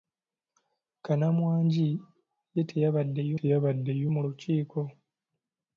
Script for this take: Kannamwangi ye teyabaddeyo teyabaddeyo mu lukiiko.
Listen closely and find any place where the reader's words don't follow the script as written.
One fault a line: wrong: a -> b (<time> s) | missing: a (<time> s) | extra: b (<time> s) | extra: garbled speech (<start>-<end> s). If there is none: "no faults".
no faults